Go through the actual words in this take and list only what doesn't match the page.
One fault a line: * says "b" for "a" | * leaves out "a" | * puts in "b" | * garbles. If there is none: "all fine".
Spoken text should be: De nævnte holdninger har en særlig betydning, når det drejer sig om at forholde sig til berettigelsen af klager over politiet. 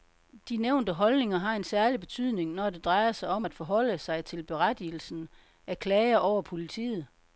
all fine